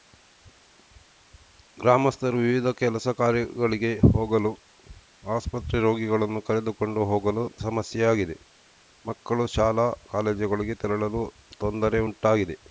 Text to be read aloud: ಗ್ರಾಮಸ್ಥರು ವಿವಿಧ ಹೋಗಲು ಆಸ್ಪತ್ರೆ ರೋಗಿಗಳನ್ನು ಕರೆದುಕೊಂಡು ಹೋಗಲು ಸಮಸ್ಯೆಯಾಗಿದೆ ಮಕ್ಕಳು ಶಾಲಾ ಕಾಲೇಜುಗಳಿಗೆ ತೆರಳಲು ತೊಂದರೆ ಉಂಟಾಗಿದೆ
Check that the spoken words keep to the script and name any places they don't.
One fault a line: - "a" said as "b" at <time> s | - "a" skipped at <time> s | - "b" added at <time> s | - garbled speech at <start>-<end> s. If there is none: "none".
- "ಕೆಲಸ ಕಾರ್ಯಗಳಿಗೆ" added at 2.8 s